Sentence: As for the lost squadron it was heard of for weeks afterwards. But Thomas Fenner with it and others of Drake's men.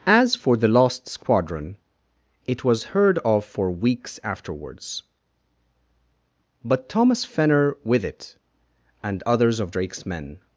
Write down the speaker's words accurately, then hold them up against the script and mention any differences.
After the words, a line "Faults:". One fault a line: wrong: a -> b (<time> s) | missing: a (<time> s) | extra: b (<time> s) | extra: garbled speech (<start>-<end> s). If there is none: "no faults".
As for the lost squadron it was heard of for weeks afterwards. But Thomas Fenner with it and others of Drake's men.
Faults:
no faults